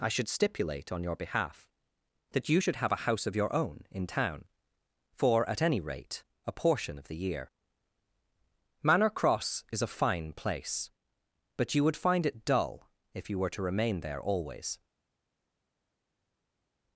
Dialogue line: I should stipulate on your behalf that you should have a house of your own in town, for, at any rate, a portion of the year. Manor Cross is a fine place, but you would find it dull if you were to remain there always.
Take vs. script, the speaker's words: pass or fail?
pass